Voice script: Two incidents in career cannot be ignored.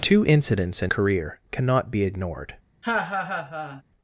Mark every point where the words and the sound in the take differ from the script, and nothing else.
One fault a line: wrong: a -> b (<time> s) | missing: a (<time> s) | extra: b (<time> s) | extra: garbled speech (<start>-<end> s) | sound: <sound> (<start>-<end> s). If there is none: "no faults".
sound: laugh (2.8-3.8 s)